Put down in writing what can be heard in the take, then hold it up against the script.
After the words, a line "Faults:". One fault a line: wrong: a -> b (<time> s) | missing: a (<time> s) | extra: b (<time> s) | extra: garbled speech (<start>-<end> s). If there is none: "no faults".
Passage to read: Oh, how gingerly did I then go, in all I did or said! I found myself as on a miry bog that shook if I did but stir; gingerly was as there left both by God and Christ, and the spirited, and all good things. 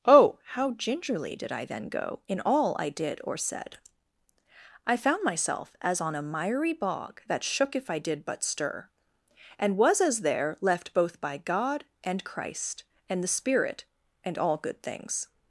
Oh, how gingerly did I then go, in all I did or said! I found myself as on a miry bog that shook if I did but stir; and was as there left both by God and Christ, and the spirit, and all good things.
Faults:
wrong: gingerly -> and (9.6 s)
wrong: spirited -> spirit (13.3 s)